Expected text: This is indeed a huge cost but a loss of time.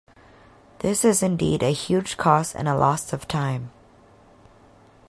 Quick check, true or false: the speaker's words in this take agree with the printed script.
false